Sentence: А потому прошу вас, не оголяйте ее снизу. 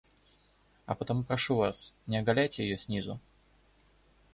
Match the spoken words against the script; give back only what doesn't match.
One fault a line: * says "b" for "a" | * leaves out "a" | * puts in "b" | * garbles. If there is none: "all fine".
all fine